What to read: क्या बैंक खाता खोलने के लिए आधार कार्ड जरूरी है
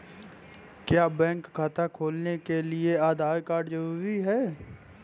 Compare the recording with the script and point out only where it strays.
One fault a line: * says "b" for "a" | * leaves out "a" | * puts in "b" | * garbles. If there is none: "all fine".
all fine